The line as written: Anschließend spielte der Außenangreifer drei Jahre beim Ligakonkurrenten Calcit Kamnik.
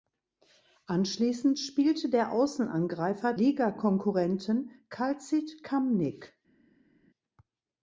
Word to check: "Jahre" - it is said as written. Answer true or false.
false